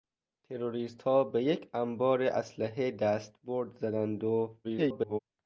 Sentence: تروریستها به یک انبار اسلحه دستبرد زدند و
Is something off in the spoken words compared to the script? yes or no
yes